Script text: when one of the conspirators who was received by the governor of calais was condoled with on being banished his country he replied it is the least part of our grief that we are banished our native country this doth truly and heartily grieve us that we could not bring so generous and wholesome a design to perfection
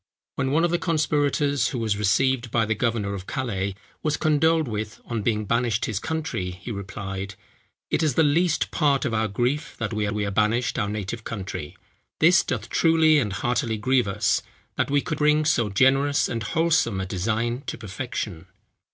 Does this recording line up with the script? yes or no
no